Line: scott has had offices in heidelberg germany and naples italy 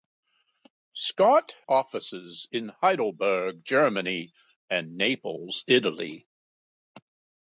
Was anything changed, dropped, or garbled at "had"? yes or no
yes